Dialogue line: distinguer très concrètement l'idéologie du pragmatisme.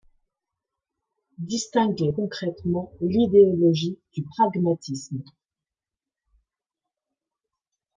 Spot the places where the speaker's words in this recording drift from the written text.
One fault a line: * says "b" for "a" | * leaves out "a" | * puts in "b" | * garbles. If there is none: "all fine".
* leaves out "très"